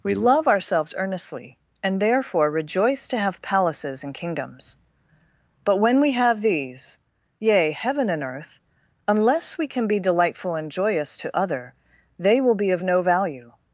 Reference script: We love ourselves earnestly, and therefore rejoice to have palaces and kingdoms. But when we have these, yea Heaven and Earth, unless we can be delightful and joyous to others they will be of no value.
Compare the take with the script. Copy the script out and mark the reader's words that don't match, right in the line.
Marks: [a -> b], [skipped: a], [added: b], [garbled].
We love ourselves earnestly, and therefore rejoice to have palaces and kingdoms. But when we have these, yea Heaven and Earth, unless we can be delightful and joyous to [others -> other] they will be of no value.